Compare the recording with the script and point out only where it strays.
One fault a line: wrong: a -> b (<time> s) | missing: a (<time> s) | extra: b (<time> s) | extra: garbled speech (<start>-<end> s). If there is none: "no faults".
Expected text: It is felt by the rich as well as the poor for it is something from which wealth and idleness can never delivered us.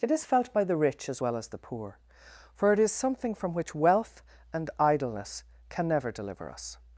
wrong: delivered -> deliver (6.1 s)